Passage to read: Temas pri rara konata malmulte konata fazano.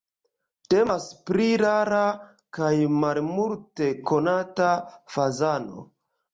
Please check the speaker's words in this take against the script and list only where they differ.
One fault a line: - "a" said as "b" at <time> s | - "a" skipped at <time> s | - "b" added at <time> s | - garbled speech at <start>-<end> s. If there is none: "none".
- "konata" said as "kaj" at 2.6 s